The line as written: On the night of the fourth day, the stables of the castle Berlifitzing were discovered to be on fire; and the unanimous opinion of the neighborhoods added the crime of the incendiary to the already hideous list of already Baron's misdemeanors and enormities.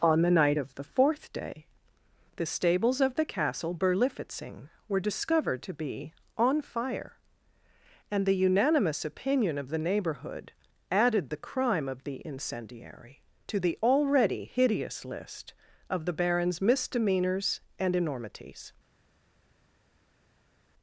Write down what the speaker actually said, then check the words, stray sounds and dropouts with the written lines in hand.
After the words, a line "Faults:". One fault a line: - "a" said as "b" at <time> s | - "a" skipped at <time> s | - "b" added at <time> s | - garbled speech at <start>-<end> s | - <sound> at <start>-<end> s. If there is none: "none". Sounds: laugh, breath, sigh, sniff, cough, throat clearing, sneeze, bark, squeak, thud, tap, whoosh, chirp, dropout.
On the night of the fourth day, the stables of the castle Berlifitzing were discovered to be on fire; and the unanimous opinion of the neighborhood added the crime of the incendiary to the already hideous list of the Baron's misdemeanors and enormities.
Faults:
- "neighborhoods" said as "neighborhood" at 9.8 s
- "already" said as "the" at 16.0 s